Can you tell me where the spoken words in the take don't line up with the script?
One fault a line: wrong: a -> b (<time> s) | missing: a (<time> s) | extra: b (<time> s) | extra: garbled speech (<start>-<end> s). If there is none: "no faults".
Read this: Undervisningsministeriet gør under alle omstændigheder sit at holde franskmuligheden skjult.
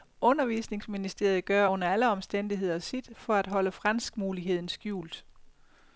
extra: for (3.2 s)